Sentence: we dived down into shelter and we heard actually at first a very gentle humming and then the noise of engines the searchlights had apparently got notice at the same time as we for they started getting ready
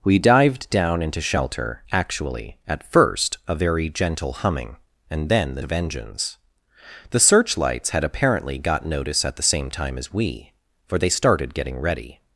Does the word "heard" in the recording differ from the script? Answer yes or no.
yes